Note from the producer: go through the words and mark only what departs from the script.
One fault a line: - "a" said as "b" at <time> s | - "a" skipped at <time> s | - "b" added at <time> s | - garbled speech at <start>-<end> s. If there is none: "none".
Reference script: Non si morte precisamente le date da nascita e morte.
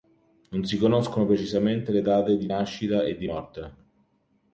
- "morte" said as "conoscono" at 0.8 s
- "da" said as "di" at 2.4 s
- "di" added at 3.2 s